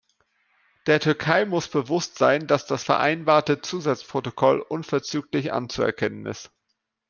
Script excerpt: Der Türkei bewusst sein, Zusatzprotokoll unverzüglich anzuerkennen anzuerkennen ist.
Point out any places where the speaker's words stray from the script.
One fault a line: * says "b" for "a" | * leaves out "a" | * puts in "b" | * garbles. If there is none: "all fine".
* puts in "muss"
* puts in "dass das vereinbarte"
* leaves out "anzuerkennen"